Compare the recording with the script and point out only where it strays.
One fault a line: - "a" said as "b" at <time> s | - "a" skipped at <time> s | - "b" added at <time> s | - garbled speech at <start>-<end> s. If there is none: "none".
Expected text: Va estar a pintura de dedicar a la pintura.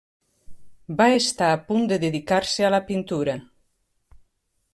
- "pintura" said as "punt" at 1.7 s
- "se" added at 2.5 s